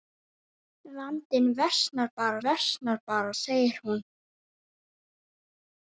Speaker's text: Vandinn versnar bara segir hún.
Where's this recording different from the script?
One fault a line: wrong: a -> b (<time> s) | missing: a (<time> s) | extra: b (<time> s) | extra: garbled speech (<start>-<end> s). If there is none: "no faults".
extra: versnar bara (2.5 s)